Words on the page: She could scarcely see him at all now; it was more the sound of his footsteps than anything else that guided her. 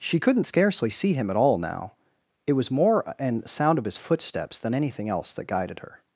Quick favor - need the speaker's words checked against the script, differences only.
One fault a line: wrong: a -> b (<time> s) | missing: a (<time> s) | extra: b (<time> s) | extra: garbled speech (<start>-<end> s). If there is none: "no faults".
wrong: could -> couldn't (0.2 s)
wrong: the -> an (3.2 s)